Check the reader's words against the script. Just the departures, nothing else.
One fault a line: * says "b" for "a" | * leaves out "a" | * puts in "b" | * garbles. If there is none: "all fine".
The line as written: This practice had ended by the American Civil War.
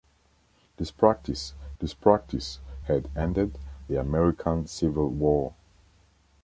* puts in "this practice"
* leaves out "by"